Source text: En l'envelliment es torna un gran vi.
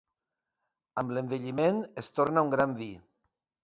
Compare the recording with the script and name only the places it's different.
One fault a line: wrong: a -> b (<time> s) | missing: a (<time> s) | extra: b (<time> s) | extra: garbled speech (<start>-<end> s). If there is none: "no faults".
wrong: En -> Amb (1.0 s)